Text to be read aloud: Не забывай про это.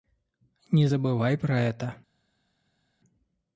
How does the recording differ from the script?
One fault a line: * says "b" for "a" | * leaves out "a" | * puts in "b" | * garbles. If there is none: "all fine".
all fine